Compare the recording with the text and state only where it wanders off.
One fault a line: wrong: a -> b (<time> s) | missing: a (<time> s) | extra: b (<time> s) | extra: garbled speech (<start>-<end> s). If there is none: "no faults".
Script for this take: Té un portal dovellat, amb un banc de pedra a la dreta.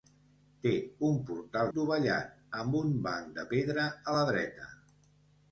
no faults